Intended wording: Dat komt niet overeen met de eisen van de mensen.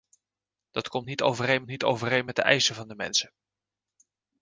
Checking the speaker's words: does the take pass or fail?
fail